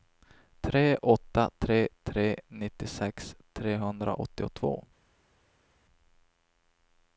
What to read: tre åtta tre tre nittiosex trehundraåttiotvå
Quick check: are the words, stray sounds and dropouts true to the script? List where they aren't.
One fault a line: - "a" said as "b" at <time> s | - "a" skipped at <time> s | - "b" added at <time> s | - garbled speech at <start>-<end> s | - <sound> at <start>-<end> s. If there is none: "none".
none